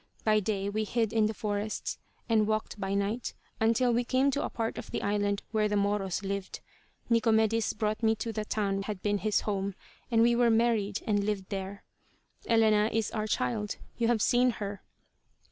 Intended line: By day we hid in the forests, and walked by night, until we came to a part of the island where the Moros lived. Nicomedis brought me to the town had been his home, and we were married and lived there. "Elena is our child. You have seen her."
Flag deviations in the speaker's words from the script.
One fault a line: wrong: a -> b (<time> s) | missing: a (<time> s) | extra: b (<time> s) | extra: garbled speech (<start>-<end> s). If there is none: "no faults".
no faults